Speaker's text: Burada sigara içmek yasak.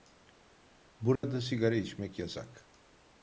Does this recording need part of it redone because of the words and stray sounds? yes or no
yes